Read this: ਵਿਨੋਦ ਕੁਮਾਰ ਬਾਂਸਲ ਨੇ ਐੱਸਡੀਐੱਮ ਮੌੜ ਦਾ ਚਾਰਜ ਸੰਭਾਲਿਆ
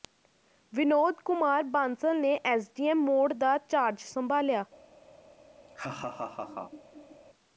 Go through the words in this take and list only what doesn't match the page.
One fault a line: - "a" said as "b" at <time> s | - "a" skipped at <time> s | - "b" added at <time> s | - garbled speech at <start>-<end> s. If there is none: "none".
none